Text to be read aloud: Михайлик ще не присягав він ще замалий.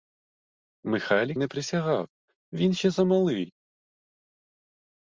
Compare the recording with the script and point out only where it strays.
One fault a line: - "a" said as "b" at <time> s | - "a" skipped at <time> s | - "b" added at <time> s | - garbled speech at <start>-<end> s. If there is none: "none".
- "ще" skipped at 1.4 s